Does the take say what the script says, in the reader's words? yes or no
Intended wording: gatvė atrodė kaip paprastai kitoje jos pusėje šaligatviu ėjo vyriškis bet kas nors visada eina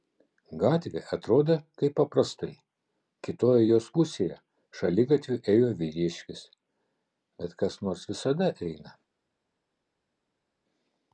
yes